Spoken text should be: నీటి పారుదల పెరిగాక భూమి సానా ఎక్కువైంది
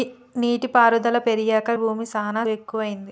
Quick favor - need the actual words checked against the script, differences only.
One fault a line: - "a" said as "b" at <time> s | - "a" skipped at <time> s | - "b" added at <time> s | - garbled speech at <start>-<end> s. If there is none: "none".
none